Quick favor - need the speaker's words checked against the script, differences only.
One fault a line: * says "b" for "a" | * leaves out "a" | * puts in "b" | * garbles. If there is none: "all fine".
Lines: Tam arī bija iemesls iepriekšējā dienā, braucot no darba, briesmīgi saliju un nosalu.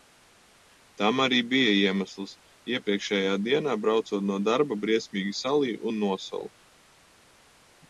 all fine